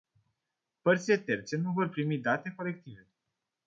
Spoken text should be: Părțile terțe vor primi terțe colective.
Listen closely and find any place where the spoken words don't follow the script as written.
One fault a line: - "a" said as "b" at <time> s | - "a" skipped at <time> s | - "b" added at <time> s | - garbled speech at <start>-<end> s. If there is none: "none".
- "nu" added at 1.6 s
- "terțe" said as "date" at 2.2 s